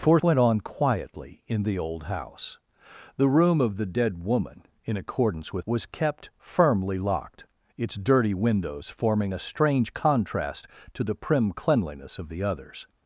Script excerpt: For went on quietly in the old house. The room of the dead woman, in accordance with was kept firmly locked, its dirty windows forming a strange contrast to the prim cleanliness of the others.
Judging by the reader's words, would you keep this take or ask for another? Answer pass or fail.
pass